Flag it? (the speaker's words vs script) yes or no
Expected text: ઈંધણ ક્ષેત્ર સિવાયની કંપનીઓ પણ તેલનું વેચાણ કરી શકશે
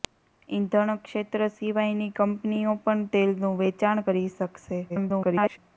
yes